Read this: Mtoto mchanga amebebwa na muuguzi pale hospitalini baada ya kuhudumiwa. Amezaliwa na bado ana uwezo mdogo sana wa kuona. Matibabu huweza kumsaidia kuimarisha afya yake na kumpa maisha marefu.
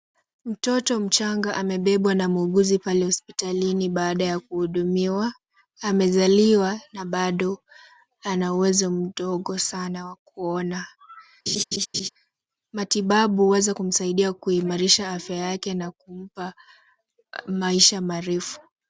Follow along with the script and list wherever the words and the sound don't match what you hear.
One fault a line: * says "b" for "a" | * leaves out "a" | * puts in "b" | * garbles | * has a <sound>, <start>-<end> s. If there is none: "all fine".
* has a laugh, 11.5-12.1 s